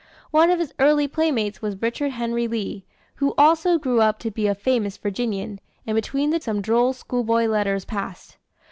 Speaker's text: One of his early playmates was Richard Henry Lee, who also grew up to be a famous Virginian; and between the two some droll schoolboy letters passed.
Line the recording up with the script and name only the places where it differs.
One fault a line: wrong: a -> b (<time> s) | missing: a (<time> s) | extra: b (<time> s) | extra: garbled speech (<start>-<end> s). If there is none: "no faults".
missing: two (6.4 s)